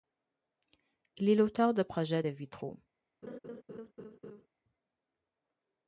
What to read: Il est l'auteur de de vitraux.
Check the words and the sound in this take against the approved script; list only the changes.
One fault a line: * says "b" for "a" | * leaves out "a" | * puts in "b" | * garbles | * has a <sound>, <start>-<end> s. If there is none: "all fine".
* puts in "projets"
* has a laugh, 3.2-4.5 s